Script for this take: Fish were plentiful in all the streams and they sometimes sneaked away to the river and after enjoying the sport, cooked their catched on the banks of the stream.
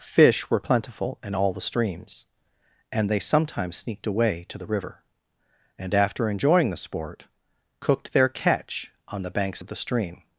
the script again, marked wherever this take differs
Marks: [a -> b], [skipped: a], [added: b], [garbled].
Fish were plentiful in all the streams and they sometimes sneaked away to the river and after enjoying the sport, cooked their [catched -> catch] on the banks of the stream.